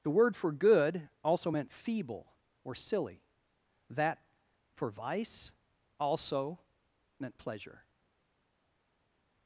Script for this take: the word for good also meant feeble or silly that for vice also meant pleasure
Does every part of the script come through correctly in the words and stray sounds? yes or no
yes